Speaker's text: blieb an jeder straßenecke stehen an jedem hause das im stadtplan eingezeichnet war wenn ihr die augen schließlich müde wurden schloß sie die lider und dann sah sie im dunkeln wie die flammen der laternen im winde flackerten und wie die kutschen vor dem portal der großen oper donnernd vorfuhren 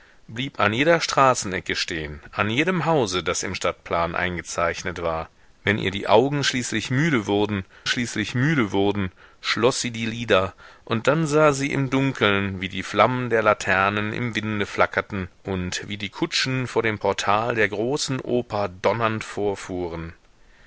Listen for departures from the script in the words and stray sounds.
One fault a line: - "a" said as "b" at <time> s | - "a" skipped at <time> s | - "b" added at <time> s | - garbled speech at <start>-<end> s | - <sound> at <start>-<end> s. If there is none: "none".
- "schließlich müde wurden" added at 7.9 s